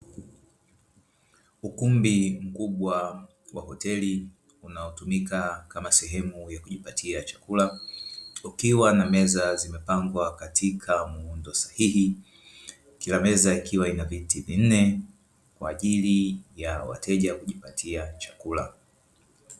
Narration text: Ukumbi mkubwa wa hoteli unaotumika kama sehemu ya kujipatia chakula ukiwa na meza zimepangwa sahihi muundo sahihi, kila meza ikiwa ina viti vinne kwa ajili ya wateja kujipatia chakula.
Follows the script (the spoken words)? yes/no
no